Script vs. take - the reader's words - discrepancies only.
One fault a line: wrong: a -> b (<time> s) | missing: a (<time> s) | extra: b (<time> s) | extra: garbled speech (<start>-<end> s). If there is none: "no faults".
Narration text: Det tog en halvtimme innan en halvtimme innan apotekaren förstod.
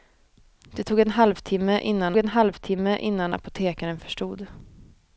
no faults